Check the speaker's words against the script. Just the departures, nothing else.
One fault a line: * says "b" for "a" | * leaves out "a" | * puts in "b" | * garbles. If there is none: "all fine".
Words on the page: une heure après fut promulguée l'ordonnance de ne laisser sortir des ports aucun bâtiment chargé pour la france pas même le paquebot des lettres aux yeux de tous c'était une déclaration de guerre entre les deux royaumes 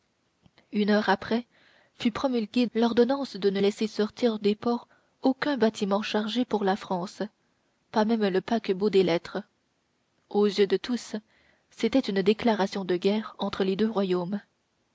all fine